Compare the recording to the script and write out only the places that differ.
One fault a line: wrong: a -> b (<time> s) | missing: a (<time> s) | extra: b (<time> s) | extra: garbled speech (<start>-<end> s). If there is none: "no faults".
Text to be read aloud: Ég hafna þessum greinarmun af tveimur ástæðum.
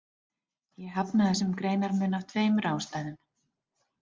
no faults